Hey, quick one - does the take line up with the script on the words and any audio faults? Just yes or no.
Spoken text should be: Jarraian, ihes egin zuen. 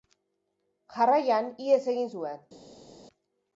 yes